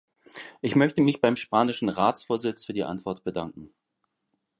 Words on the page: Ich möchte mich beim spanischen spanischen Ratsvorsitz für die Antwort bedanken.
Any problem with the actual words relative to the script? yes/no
yes